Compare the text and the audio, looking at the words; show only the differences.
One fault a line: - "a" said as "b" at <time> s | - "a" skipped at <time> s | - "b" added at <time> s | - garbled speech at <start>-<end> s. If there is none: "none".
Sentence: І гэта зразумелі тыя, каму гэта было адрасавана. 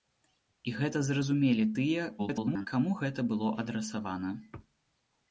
- garbled speech at 2.2-2.7 s